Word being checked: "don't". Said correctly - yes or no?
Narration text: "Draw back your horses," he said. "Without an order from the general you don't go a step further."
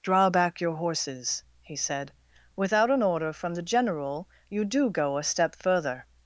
no